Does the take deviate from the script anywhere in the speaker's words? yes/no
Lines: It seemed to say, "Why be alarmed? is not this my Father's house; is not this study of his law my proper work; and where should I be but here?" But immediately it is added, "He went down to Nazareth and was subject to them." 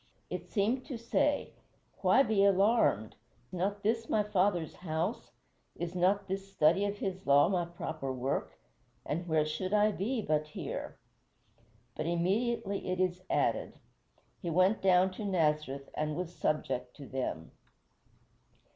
yes